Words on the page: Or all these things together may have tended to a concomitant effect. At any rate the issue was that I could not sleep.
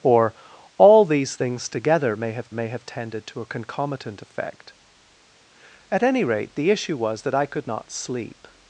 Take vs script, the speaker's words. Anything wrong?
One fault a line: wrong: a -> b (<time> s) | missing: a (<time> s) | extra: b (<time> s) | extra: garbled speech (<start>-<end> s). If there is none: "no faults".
extra: may have (2.5 s)